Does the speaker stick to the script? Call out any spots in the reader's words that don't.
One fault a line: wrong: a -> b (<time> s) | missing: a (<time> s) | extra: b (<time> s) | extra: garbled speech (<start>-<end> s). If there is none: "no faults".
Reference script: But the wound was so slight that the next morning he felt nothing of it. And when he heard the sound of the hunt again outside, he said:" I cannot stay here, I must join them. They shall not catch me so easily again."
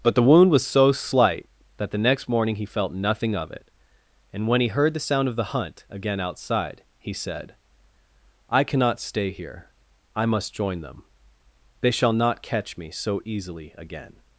no faults